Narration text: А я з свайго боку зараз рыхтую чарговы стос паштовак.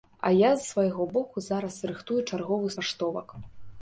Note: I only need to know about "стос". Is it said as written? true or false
false